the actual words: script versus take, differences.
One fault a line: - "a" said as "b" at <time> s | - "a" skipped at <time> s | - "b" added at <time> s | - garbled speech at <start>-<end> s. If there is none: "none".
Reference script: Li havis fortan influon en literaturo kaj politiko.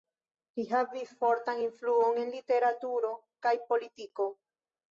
none